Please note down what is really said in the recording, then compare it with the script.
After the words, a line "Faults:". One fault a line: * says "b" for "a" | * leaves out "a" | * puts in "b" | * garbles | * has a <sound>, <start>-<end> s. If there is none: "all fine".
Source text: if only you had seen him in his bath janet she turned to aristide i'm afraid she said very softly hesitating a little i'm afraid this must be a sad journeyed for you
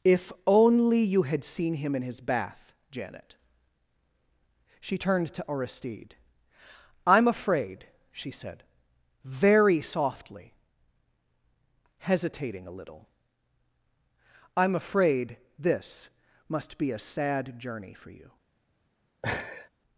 if only you had seen him in his bath janet she turned to aristide i'm afraid she said very softly hesitating a little i'm afraid this must be a sad journey for you
Faults:
* says "journey" for "journeyed"
* has a laugh, 19.2-19.7 s